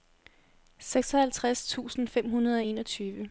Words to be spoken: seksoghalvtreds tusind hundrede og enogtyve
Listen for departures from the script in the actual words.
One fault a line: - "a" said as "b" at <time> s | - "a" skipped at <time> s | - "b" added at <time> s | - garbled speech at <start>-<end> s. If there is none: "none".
- "fem" added at 2.0 s